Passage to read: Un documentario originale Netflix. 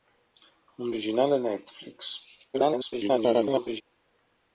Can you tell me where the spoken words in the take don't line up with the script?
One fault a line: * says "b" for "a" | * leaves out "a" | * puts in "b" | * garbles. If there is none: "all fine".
* leaves out "documentario"
* garbles